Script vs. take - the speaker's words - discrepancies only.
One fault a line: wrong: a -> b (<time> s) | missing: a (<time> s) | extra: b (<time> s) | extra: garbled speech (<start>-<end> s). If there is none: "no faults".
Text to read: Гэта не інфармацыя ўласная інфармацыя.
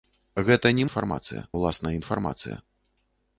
no faults